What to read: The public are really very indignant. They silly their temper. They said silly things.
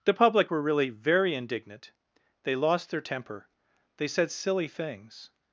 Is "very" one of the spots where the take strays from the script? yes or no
no